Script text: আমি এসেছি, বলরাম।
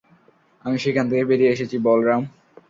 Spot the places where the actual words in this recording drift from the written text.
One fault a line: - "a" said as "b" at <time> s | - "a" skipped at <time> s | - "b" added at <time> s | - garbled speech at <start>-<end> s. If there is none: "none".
- "সেখান থেকে বেরিয়ে" added at 0.8 s